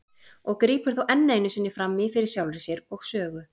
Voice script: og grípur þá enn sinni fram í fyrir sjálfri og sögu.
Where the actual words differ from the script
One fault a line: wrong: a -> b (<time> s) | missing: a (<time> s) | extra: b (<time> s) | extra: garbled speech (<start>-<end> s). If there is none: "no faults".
extra: einu (1.4 s)
extra: sér (2.7 s)